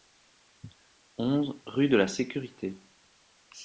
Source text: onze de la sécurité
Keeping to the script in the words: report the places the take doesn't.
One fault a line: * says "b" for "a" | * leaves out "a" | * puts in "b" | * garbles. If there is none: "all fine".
* puts in "rue"